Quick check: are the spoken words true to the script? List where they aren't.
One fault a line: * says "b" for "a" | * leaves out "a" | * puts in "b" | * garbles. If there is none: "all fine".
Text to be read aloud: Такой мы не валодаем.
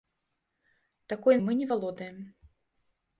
all fine